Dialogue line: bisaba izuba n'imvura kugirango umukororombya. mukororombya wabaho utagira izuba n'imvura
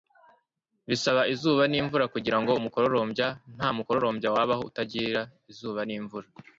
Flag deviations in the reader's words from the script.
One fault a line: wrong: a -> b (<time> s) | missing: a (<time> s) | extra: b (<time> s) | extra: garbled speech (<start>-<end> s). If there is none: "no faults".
extra: nta (3.5 s)